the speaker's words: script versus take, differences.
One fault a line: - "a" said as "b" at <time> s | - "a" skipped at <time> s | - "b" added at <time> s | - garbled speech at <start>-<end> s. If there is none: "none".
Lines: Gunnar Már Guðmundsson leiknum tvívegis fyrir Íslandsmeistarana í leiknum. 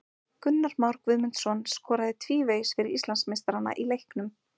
- "leiknum" said as "skoraði" at 1.7 s